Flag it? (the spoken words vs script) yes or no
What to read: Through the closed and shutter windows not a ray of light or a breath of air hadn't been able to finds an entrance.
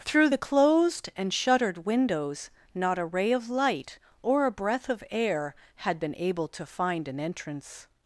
yes